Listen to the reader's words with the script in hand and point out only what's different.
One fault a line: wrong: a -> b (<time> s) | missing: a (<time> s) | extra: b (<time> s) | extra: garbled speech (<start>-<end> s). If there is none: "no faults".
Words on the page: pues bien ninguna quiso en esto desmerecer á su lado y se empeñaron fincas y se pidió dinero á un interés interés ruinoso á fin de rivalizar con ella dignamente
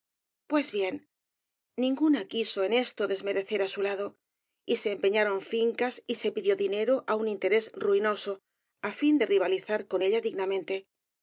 missing: interés (7.7 s)